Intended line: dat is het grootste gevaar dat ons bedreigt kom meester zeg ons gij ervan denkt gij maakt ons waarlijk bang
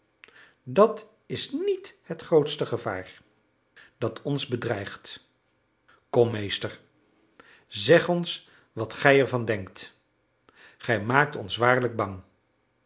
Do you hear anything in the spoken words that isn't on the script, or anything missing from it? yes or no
yes